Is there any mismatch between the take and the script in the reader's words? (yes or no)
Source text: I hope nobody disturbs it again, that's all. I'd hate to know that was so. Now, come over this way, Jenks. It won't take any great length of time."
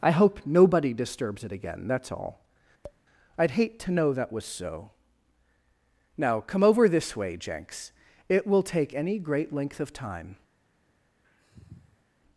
yes